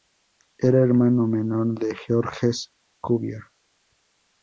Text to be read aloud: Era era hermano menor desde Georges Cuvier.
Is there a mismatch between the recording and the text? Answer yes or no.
yes